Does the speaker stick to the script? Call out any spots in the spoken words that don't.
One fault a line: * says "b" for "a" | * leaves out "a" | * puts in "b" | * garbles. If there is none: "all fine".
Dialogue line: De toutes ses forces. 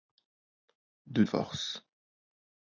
* leaves out "toutes ses"